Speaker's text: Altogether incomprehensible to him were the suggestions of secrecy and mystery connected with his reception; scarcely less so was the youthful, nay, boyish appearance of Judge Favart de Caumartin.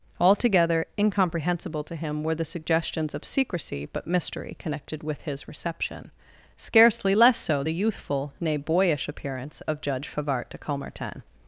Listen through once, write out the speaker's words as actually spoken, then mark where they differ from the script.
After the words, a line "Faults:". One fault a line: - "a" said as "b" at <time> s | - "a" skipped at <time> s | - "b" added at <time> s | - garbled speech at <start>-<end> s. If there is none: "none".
Altogether incomprehensible to him were the suggestions of secrecy but mystery connected with his reception; scarcely less so the youthful, nay, boyish appearance of Judge Favart de Caumartin.
Faults:
- "and" said as "but" at 3.9 s
- "was" skipped at 7.6 s